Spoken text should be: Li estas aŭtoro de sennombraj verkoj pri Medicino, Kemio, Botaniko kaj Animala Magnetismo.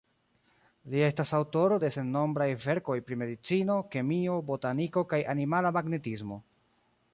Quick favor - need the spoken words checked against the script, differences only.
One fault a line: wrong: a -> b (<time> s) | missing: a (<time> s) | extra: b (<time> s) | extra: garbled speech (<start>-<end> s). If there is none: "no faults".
no faults